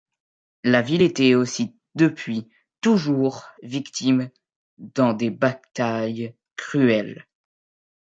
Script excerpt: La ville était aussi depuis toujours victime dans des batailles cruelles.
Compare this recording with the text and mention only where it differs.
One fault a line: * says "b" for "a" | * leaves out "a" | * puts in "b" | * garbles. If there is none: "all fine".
all fine